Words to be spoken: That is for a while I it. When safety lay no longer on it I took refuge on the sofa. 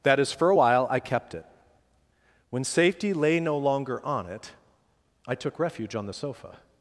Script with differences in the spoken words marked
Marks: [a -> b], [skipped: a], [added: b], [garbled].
That is for a while I [added: kept] it. When safety lay no longer on it I took refuge on the sofa.